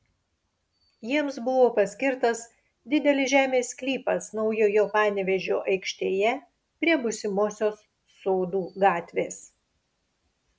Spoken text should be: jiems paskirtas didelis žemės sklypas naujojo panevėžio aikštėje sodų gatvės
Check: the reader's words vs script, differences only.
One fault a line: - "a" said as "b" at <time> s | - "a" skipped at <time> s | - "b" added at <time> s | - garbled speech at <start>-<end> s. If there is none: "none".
- "buvo" added at 1.5 s
- "prie būsimosios" added at 6.8 s